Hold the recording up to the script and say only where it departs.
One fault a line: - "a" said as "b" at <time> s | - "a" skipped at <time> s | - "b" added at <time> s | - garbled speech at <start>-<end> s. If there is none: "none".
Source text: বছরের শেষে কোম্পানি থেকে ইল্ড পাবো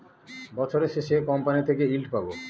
none